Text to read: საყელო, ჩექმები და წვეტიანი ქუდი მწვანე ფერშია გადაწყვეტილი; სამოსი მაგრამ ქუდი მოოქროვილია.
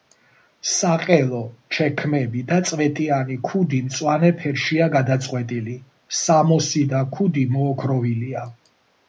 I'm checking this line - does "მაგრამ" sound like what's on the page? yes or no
no